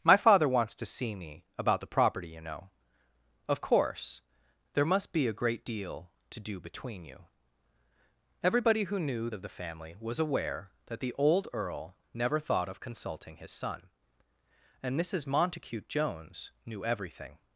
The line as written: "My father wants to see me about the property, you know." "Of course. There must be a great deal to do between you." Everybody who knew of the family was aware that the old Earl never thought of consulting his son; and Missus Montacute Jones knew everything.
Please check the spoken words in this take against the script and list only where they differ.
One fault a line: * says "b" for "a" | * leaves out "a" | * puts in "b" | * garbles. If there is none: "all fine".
all fine